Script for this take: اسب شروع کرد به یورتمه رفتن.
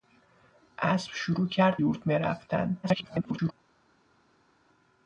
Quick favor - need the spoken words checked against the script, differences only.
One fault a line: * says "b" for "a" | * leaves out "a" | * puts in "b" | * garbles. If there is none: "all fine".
* leaves out "به"
* garbles